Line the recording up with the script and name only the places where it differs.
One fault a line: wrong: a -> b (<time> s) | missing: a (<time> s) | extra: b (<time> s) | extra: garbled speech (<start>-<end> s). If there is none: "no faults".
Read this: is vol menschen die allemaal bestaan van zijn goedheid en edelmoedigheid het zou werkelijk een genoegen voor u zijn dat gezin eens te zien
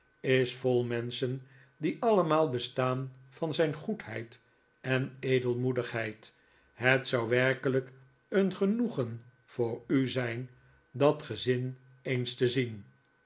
no faults